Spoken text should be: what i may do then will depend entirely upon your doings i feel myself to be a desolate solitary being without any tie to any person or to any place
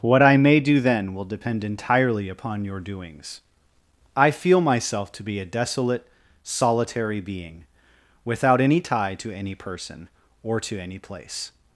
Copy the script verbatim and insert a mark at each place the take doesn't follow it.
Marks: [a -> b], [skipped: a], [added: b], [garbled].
what i may do then will depend entirely upon your doings i feel myself to be a desolate solitary being without any tie to any person or to any place